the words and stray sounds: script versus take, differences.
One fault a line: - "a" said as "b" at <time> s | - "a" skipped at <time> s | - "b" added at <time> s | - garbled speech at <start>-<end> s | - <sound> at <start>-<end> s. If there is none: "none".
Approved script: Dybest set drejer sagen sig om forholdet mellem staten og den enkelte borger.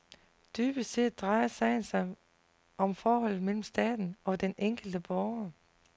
none